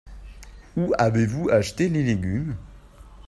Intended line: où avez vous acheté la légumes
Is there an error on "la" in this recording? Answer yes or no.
yes